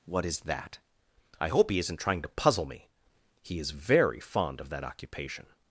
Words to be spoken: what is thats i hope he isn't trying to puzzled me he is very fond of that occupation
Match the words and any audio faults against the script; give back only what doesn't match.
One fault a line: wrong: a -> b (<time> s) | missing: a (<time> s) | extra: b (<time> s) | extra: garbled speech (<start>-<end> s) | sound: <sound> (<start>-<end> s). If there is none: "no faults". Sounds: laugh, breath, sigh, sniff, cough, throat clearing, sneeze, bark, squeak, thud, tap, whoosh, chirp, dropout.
wrong: thats -> that (0.4 s)
wrong: puzzled -> puzzle (2.3 s)